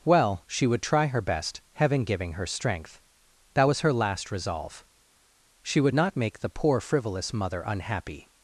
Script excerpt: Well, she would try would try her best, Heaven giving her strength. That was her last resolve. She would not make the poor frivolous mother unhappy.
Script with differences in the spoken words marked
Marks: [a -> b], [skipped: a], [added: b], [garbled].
Well, she would try [skipped: would try] her best, Heaven giving her strength. That was her last resolve. She would not make the poor frivolous mother unhappy.